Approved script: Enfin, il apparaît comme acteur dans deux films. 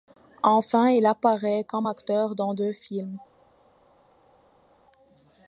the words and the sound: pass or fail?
pass